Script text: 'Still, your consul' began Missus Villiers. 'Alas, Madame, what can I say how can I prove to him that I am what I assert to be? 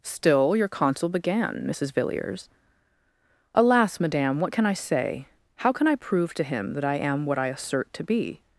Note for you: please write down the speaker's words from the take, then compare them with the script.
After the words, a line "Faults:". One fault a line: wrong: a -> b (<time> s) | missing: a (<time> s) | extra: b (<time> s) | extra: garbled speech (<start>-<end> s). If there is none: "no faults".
'Still, your consul' began Missus Villiers. 'Alas, Madame, what can I say how can I prove to him that I am what I assert to be?
Faults:
no faults